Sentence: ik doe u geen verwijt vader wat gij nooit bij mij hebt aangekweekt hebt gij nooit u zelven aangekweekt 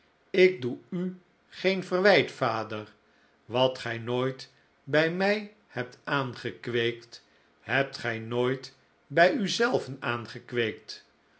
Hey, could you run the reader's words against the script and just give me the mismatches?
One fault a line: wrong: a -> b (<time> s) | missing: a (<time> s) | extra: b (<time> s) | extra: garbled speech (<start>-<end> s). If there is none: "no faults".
extra: bij (9.1 s)